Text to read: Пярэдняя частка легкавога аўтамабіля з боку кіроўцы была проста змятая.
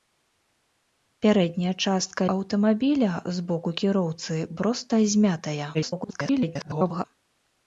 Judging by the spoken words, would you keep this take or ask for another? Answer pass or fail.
fail